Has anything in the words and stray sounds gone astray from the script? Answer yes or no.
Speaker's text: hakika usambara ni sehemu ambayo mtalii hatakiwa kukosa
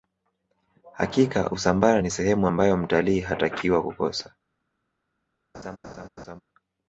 yes